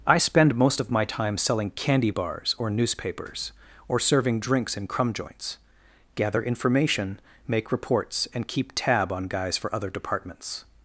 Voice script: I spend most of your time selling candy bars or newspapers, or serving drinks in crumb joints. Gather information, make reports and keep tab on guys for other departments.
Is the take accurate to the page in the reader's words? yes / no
no